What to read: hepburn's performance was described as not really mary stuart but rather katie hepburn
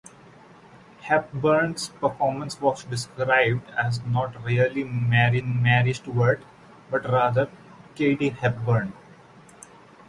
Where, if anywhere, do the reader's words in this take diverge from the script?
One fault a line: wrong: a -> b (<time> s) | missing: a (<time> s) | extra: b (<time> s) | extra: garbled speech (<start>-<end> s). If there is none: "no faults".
extra: mary (5.4 s)